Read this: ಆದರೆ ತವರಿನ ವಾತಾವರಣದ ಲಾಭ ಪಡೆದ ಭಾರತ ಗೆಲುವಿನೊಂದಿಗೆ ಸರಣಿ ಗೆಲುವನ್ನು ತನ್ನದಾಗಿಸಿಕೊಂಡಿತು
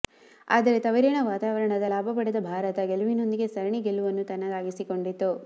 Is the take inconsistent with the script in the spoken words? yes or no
no